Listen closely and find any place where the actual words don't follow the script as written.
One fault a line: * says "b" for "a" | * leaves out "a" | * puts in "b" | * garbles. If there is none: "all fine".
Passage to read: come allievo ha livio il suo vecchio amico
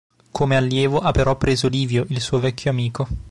* puts in "però preso"